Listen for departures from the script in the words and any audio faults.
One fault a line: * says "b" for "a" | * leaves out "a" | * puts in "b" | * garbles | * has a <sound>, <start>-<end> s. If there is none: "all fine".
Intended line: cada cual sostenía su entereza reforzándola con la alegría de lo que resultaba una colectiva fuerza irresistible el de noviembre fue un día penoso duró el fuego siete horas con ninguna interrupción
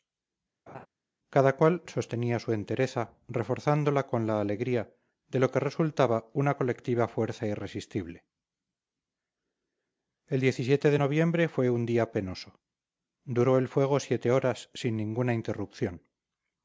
* has a laugh, 0.7-0.9 s
* says "sin" for "con"